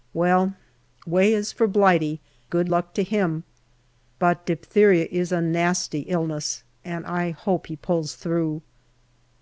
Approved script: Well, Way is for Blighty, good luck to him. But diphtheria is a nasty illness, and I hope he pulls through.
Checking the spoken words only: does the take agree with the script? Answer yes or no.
yes